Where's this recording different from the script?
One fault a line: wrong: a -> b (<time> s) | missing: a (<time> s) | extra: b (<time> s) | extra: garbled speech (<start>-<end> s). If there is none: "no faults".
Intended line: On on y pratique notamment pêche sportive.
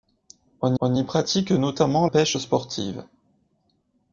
no faults